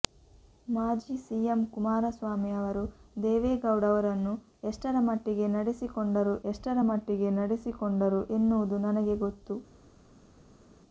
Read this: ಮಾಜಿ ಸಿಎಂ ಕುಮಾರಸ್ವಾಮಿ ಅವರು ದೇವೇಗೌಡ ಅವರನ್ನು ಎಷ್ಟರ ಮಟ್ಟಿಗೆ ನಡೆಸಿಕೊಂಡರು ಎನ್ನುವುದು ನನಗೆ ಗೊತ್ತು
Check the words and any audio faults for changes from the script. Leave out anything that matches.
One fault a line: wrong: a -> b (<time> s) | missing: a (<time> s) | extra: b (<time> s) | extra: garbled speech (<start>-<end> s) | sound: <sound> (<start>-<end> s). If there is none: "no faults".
extra: ಎಷ್ಟರ ಮಟ್ಟಿಗೆ ನಡೆಸಿಕೊಂಡರು (6.5 s)